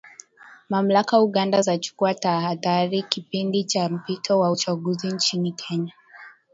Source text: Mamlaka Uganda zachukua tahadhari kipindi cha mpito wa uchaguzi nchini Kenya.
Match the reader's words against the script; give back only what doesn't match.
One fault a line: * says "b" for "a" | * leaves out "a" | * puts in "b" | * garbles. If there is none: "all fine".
all fine